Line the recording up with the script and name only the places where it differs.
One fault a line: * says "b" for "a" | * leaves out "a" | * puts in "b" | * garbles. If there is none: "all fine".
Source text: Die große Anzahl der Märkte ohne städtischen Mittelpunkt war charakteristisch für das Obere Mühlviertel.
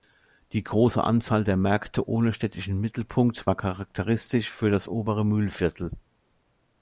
all fine